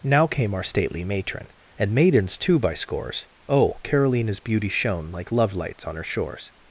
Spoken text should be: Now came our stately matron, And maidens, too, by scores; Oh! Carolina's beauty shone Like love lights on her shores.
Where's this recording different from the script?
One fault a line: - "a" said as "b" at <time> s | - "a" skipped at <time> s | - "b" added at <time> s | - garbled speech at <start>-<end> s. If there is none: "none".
none